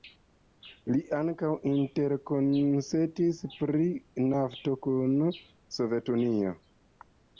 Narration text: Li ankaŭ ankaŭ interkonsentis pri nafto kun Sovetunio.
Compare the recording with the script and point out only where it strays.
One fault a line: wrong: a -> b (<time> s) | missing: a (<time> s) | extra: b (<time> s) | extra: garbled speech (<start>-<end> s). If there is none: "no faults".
missing: ankaŭ (1.5 s)